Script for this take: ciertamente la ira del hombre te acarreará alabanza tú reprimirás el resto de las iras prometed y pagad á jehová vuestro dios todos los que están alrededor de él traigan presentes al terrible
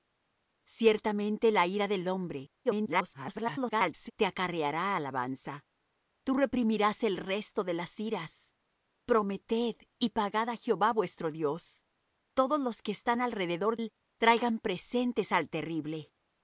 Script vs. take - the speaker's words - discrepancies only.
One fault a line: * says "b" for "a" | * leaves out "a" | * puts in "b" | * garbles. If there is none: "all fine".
* garbles
* leaves out "de"